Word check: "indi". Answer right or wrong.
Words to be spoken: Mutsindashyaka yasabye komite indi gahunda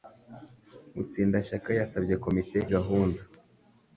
wrong